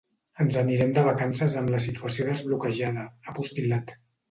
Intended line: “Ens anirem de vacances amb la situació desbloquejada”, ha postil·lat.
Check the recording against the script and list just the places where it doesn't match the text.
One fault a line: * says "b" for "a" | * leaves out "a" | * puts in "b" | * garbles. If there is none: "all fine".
all fine